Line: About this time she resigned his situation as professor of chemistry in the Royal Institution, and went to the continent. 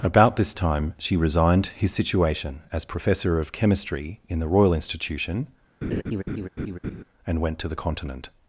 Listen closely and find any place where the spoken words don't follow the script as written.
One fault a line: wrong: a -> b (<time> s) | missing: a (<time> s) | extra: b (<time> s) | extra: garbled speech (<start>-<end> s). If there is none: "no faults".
no faults